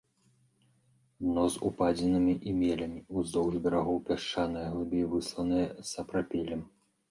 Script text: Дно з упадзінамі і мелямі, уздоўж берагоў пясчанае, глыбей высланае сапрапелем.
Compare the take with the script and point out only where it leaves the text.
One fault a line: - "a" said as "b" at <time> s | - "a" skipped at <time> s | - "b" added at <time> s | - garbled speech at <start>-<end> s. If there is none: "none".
none